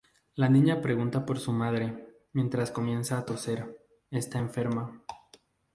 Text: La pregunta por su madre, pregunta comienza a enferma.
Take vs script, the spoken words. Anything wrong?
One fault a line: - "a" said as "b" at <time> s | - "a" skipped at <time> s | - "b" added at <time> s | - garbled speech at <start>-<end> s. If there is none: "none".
- "niña" added at 0.5 s
- "pregunta" said as "mientras" at 2.3 s
- "toser está" added at 3.2 s